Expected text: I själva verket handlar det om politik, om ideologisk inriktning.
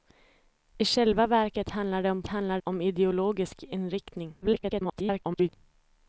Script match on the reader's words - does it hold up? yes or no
no